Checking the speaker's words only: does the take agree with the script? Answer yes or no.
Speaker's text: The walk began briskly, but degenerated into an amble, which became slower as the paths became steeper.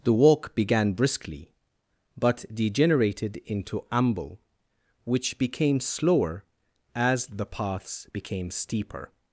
no